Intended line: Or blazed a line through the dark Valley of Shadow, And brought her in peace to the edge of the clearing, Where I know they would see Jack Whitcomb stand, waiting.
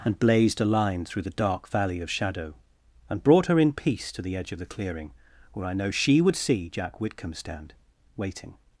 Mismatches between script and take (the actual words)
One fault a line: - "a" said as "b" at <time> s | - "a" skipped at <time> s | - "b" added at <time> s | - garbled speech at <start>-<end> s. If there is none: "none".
- "Or" said as "And" at 0.0 s
- "they" said as "she" at 5.9 s